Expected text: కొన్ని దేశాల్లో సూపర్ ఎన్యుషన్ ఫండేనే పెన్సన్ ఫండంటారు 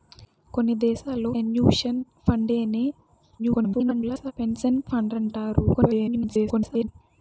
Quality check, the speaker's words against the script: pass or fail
fail